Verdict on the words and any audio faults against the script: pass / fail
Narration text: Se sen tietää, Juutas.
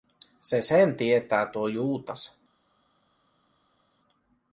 fail